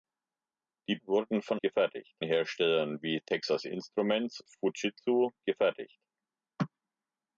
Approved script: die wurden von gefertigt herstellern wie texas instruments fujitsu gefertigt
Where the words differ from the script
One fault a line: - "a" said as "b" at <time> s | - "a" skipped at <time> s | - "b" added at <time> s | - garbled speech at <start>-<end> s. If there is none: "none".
none